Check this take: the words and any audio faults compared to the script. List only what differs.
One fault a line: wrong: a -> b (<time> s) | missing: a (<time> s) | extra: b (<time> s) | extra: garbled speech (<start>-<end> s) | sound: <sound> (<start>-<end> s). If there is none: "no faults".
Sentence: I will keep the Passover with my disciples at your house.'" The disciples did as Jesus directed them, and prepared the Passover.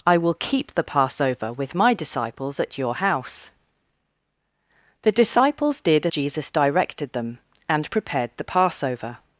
missing: as (6.1 s)